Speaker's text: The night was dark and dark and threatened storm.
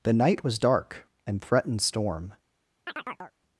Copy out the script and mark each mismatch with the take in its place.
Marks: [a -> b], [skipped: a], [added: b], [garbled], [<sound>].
The night was dark and [skipped: dark and] threatened storm. [chirp]